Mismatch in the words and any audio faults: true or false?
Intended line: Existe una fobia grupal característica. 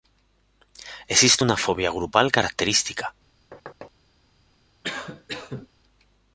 true